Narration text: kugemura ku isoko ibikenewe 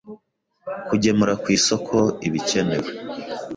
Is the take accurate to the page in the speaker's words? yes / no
yes